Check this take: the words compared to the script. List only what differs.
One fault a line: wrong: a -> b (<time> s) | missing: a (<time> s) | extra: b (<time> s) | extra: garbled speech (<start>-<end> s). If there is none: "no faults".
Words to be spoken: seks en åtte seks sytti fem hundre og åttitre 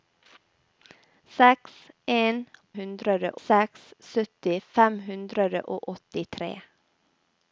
wrong: åtte -> hundre (2.8 s)